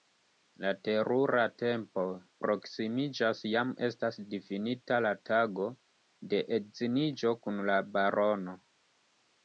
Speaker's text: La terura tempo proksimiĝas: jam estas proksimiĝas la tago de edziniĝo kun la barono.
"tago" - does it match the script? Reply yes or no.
yes